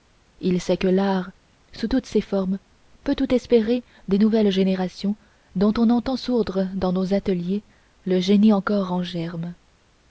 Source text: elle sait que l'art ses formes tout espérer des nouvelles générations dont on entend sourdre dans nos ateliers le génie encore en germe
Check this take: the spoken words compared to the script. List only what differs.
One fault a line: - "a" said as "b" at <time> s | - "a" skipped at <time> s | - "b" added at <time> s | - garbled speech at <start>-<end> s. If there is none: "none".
- "elle" said as "il" at 0.4 s
- "sous toutes" added at 1.7 s
- "peut" added at 3.0 s